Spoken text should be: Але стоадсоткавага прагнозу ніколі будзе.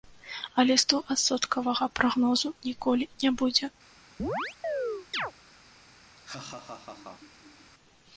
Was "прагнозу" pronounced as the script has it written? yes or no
yes